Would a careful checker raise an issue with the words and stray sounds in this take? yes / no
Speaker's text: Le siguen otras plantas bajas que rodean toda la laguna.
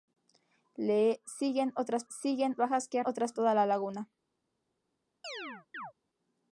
yes